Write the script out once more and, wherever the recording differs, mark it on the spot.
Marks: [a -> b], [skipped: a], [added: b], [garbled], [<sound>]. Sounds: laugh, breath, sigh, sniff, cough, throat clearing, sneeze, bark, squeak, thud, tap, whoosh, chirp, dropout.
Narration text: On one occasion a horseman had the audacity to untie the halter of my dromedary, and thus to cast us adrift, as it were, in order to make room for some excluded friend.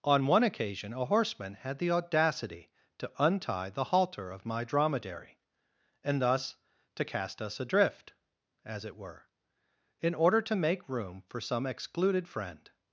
On one occasion a horseman had the audacity to untie the halter of my dromedary, and thus to cast us adrift, as it were, in order to make room for some excluded friend.